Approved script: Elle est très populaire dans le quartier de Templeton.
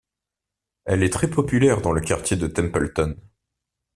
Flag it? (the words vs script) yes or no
no